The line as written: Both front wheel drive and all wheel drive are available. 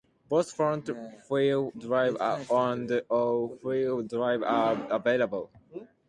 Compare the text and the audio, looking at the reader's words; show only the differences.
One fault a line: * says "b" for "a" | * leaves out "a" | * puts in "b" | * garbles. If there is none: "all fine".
all fine